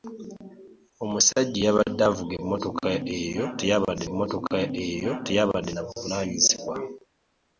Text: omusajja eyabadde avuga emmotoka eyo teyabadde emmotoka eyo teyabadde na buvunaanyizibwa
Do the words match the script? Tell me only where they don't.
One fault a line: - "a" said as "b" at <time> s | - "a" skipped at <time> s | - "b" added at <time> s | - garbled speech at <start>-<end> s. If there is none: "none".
none